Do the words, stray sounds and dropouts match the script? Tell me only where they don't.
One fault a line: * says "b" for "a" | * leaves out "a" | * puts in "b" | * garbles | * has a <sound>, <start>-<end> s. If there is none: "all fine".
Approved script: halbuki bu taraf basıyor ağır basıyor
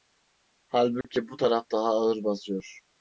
* has a dropout, 1.0-1.0 s
* says "daha" for "basıyor"